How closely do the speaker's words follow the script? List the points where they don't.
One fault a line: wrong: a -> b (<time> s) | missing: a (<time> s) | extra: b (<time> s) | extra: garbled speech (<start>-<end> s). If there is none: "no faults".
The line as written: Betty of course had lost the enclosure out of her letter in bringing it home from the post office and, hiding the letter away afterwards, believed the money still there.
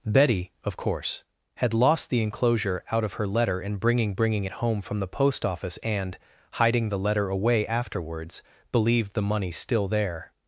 extra: bringing (4.2 s)